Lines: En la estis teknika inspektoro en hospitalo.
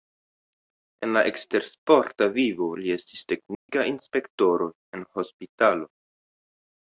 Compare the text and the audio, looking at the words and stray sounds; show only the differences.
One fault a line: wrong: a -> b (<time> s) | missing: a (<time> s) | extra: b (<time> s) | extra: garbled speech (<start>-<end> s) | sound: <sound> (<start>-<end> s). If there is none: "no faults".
extra: ekstersporta vivo li (1.3 s)
sound: dropout (3.5-3.7 s)